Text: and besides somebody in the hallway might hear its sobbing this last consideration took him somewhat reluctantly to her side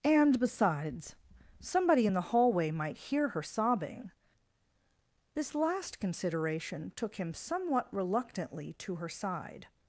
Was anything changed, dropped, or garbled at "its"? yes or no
yes